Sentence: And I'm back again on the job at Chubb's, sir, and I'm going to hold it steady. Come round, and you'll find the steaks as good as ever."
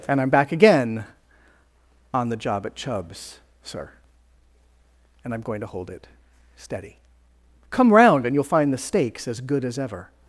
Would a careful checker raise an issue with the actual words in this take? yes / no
no